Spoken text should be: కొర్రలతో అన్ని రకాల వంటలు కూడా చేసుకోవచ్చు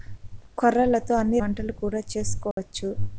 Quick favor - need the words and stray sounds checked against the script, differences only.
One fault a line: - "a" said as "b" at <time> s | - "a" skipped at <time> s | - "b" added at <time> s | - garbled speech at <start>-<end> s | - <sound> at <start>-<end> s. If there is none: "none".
- "రకాల" skipped at 1.4 s
- dropout at 2.5-2.6 s